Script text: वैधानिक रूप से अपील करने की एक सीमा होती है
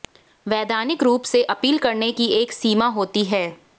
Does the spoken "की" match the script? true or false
true